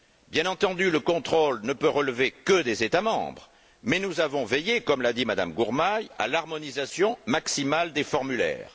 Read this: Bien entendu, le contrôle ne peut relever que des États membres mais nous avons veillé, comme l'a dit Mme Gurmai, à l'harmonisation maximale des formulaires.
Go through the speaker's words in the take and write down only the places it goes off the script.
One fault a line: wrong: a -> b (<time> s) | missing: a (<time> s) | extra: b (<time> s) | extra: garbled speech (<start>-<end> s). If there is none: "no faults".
no faults